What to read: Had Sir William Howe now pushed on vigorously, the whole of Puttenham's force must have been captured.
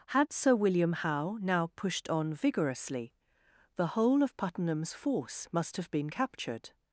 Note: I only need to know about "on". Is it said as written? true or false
true